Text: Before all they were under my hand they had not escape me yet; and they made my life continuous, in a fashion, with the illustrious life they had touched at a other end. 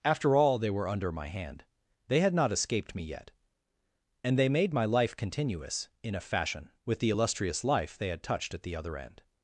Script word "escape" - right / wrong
wrong